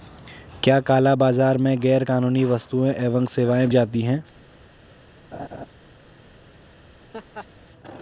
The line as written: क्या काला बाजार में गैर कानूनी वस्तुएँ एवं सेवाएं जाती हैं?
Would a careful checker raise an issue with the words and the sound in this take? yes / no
yes